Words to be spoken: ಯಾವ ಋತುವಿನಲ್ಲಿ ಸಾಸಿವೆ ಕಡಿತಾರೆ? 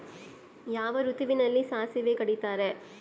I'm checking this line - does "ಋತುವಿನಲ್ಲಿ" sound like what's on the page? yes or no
yes